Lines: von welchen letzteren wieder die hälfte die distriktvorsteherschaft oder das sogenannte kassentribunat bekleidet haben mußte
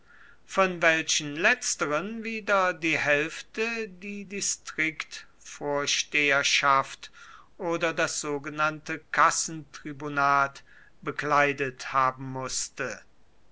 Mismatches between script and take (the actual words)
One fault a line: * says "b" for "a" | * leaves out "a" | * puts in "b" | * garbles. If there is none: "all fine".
all fine